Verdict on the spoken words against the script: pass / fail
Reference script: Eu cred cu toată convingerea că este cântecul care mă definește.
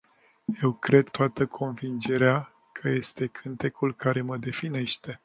fail